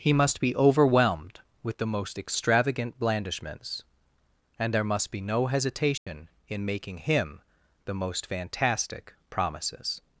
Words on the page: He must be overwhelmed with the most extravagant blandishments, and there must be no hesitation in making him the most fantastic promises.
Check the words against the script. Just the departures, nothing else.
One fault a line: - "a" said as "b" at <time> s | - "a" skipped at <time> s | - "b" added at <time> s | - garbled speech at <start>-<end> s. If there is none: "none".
none